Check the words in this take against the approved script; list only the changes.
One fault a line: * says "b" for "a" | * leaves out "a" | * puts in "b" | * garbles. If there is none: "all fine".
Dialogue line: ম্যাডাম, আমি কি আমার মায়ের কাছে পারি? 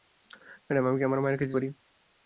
all fine